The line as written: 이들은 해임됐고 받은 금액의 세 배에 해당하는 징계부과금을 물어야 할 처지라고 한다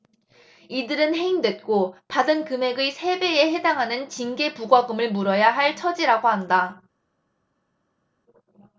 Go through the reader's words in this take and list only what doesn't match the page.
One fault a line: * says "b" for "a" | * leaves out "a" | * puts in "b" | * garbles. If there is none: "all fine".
all fine